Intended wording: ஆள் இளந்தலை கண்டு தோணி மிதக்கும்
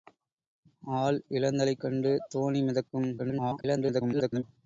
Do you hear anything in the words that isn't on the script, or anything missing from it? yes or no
yes